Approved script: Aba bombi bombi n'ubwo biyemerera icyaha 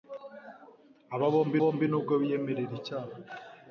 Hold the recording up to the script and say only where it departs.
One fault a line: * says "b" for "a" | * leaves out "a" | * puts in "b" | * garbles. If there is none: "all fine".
all fine